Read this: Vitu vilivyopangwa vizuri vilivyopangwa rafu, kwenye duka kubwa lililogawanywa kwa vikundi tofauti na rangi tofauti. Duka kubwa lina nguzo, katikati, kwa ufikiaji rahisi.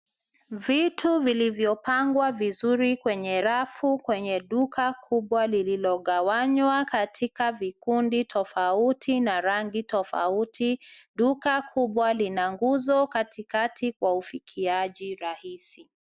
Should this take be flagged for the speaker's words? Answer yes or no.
yes